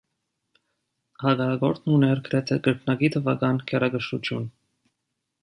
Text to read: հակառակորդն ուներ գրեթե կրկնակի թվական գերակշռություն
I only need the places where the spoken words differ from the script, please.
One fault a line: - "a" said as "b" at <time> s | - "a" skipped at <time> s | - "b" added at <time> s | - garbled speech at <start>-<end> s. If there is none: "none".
none